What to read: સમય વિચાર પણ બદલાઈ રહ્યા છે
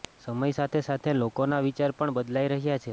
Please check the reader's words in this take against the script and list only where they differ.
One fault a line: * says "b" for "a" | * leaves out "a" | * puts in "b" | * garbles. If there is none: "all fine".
* puts in "સાથે સાથે લોકોના"